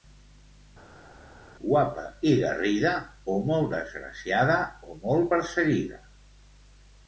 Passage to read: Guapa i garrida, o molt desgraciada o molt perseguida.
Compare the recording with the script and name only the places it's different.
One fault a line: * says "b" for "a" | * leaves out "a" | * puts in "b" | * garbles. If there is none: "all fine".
all fine